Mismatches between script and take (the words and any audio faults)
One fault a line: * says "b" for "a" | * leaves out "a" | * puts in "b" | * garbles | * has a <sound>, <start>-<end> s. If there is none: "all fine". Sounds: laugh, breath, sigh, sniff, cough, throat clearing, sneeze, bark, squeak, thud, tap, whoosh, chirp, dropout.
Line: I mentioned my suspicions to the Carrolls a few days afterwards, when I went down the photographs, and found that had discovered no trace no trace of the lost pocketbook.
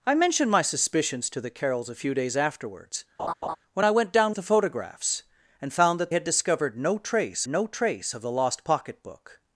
* has a laugh, 3.2-3.6 s